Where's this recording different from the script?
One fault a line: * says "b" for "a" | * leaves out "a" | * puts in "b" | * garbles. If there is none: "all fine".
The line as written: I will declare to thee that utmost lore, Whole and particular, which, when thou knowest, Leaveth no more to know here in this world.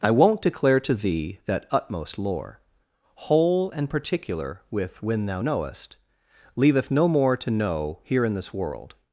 * says "won't" for "will"
* says "with" for "which"